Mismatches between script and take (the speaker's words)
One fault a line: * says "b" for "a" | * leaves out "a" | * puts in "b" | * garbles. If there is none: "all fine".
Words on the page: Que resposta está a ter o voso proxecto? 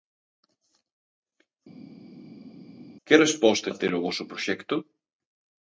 * leaves out "está"